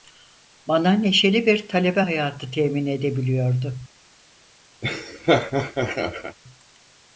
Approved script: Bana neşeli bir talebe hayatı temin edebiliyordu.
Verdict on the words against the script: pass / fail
pass